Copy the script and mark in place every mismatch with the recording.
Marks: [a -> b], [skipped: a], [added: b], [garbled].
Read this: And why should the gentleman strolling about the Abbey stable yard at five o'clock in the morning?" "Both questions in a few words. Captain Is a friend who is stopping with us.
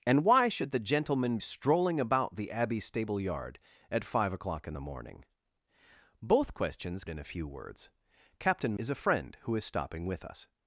And why should the gentleman strolling about the Abbey stable yard at five o'clock in the morning?" "Both questions in a few words. Captain Is a friend who is stopping with us.